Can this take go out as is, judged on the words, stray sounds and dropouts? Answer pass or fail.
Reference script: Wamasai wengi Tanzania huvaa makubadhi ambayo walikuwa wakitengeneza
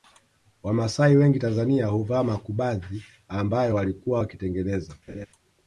fail